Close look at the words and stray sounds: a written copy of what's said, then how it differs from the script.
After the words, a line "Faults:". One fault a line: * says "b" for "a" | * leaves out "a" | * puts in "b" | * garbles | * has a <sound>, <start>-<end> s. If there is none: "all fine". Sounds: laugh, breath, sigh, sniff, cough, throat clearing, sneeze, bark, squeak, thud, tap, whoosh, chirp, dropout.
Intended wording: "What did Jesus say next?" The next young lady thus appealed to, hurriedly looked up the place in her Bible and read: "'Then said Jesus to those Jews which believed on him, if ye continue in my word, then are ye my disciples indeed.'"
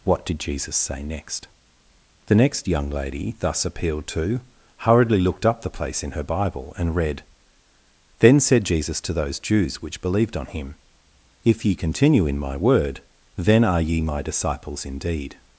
"What did Jesus say next?" The next young lady thus appealed to, hurriedly looked up the place in her Bible and read: "'Then said Jesus to those Jews which believed on him, if ye continue in my word, then are ye my disciples indeed.'"
Faults:
all fine